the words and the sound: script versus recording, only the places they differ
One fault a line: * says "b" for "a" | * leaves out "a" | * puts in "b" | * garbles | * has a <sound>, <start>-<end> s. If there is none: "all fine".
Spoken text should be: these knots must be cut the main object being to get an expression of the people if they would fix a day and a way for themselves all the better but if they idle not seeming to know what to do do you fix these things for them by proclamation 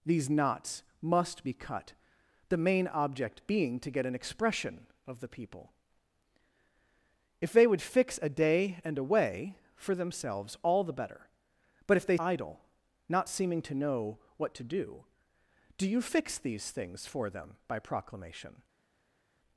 all fine